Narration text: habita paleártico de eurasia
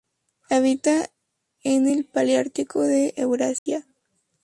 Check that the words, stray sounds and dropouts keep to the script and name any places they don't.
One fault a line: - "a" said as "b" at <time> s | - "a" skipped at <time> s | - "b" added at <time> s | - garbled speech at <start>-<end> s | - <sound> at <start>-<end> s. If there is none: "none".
- "en el" added at 1.6 s
- dropout at 3.6-3.7 s